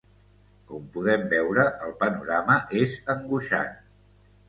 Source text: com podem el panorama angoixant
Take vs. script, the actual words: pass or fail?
fail